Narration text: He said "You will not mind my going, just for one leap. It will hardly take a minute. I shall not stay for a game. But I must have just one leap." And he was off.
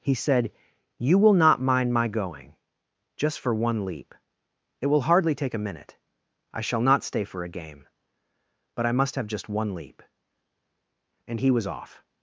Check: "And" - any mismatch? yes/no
no